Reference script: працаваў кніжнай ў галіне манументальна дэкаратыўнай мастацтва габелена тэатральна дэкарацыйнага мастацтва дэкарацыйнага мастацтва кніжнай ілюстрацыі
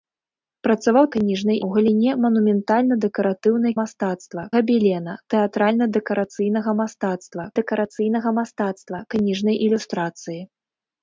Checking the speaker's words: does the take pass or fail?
pass